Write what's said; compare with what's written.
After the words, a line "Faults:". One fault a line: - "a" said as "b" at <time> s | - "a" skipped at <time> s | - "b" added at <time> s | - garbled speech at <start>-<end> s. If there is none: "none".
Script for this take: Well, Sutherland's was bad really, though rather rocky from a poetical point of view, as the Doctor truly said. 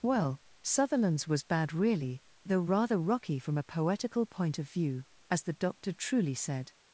Well, Sutherland's was bad really, though rather rocky from a poetical point of view, as the Doctor truly said.
Faults:
none